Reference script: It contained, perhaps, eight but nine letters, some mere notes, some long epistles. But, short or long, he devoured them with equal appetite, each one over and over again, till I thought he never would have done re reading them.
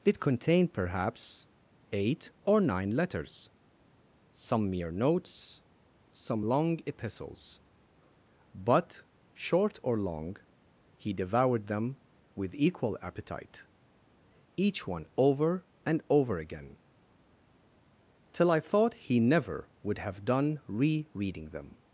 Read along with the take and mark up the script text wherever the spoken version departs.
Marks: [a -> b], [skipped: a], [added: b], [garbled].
It contained, perhaps, eight [but -> or] nine letters, some mere notes, some long epistles. But, short or long, he devoured them with equal appetite, each one over and over again, till I thought he never would have done re reading them.